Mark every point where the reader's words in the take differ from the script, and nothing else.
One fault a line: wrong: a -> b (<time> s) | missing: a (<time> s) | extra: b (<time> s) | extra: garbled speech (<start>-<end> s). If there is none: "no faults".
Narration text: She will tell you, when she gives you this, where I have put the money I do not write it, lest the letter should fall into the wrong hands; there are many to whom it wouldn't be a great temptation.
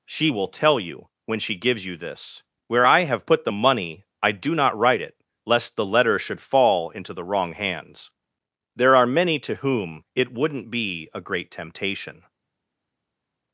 no faults